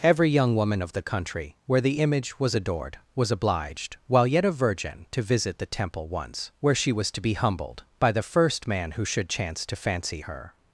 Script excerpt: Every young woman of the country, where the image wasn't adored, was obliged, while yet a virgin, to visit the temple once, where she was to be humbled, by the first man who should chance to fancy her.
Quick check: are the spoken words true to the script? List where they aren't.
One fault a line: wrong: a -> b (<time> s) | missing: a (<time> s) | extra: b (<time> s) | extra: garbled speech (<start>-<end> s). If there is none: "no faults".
wrong: wasn't -> was (2.4 s)